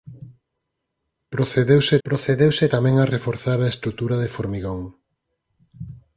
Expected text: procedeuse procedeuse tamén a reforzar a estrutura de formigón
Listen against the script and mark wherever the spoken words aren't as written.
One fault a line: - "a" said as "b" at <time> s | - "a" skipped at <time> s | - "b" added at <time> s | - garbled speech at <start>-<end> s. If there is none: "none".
none